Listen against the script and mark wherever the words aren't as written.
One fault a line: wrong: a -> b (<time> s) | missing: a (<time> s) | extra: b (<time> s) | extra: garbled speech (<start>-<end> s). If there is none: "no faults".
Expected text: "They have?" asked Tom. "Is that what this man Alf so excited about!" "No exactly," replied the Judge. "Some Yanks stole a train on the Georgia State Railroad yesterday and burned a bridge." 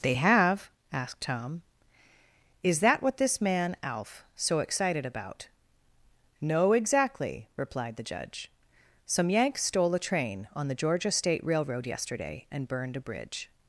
no faults